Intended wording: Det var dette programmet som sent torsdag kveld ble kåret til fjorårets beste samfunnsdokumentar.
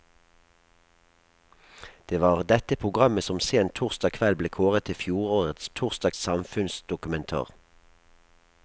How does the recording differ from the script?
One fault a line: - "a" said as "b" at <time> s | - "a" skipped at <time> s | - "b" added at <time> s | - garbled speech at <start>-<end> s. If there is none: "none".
- "beste" said as "torsdag" at 5.8 s